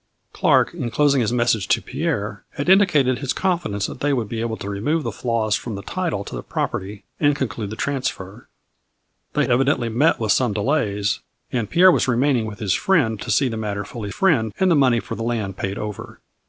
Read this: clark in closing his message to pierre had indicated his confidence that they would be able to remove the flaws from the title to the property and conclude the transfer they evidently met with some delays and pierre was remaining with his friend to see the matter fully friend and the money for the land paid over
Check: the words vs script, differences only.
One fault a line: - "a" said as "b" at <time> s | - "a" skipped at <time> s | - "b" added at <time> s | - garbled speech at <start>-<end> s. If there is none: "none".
none